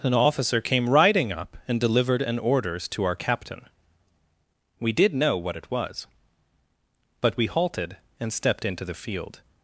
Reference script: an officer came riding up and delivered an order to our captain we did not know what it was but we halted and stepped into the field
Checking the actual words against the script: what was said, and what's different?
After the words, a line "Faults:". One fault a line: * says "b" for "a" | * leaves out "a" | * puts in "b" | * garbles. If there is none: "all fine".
an officer came riding up and delivered an orders to our captain we did know what it was but we halted and stepped into the field
Faults:
* says "orders" for "order"
* leaves out "not"